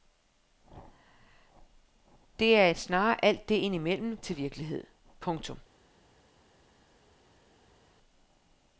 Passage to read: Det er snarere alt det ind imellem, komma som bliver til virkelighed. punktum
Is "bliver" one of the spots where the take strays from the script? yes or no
yes